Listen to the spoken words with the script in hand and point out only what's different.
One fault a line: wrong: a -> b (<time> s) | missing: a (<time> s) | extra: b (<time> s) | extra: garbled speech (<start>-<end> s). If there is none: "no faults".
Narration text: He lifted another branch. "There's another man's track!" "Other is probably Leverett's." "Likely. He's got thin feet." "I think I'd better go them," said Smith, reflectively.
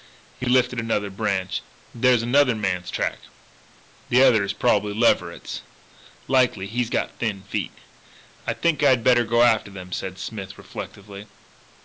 extra: The (4.1 s)
extra: after (9.4 s)